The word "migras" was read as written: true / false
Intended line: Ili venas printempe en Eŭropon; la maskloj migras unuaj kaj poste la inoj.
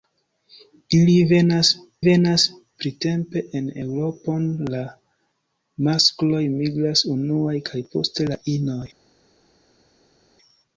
true